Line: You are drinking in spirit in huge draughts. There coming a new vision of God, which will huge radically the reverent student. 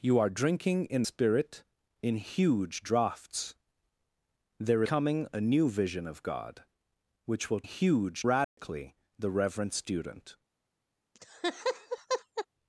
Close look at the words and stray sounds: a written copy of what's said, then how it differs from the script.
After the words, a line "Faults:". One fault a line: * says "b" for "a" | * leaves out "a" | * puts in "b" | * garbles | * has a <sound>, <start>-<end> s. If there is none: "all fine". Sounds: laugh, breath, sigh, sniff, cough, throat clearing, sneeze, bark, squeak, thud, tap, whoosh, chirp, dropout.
You are drinking in spirit in huge draughts. There coming a new vision of God, which will huge radically the reverent student.
Faults:
* has a dropout, 8.4-8.6 s
* has a laugh, 11.1-12.5 s